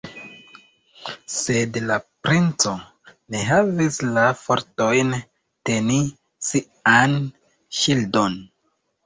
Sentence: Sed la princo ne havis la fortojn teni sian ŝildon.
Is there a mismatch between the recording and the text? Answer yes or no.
no